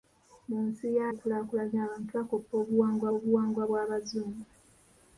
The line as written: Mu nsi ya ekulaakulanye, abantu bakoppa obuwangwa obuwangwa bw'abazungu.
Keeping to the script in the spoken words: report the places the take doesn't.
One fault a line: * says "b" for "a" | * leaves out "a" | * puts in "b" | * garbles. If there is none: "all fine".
all fine